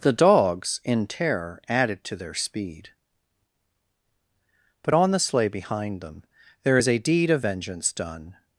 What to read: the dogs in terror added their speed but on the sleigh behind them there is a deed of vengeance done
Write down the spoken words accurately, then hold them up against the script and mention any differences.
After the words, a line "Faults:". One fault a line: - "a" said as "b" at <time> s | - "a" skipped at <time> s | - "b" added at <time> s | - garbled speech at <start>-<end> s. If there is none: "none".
the dogs in terror added to their speed but on the sleigh behind them there is a deed of vengeance done
Faults:
- "to" added at 2.0 s